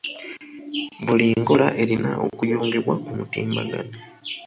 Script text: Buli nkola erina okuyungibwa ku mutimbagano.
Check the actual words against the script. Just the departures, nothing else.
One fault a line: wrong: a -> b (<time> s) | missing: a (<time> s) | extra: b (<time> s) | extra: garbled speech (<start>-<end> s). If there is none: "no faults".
no faults